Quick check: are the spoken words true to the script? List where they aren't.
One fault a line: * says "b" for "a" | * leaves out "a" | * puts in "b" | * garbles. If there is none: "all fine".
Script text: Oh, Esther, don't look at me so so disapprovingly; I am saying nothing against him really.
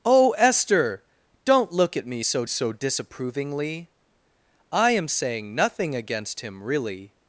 all fine